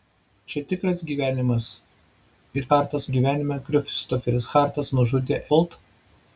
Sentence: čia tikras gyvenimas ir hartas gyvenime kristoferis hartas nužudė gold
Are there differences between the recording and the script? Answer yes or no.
no